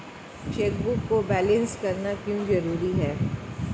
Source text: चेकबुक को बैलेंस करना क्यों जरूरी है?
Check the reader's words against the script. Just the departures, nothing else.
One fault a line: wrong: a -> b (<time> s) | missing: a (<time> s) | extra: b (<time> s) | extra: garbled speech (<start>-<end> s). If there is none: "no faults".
no faults